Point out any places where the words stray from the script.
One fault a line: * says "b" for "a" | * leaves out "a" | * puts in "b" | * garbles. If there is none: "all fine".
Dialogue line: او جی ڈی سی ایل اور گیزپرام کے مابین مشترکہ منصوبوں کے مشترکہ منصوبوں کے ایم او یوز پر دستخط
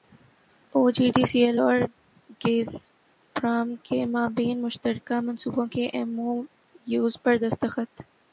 * leaves out "مشترکہ منصوبوں کے"